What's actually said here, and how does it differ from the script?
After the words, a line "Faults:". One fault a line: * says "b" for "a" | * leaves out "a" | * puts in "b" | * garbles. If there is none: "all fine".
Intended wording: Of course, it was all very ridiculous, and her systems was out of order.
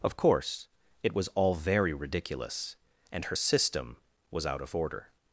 Of course, it was all very ridiculous, and her system was out of order.
Faults:
* says "system" for "systems"